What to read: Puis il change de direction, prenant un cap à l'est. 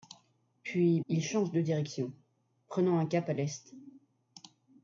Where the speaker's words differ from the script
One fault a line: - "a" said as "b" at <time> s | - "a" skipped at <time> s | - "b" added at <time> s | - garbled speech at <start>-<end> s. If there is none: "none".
none